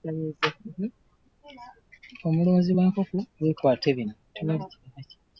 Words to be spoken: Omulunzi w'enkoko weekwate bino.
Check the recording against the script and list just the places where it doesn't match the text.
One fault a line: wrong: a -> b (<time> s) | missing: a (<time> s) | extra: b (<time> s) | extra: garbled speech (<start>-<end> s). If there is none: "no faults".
no faults